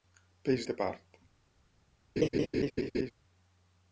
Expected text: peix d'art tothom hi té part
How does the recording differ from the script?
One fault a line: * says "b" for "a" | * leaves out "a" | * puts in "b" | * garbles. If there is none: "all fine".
* leaves out "d'art tothom"